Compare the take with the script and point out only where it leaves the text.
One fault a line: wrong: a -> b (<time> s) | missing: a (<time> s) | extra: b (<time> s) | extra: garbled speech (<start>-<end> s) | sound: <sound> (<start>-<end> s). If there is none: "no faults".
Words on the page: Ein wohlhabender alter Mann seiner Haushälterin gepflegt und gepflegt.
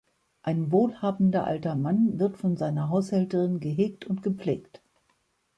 extra: wird von (2.2 s)
wrong: gepflegt -> gehegt (3.6 s)